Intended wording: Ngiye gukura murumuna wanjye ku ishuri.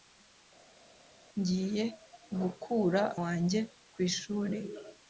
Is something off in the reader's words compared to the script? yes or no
yes